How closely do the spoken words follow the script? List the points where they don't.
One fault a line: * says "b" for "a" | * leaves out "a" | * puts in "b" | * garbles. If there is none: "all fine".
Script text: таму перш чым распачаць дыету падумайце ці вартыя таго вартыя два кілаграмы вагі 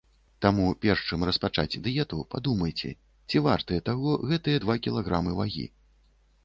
* says "гэтыя" for "вартыя"